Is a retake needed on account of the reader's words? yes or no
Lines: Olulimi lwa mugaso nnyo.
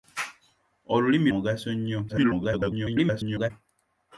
yes